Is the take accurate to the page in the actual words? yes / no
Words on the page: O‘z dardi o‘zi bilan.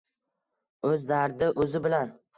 yes